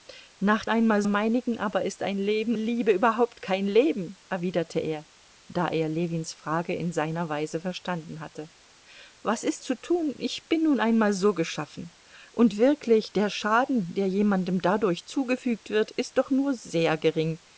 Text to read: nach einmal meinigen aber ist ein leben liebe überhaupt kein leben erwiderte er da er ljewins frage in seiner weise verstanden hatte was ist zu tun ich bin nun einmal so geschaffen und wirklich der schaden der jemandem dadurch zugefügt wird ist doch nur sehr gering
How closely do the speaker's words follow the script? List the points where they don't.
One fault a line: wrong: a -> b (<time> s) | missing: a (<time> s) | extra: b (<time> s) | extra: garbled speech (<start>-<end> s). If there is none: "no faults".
no faults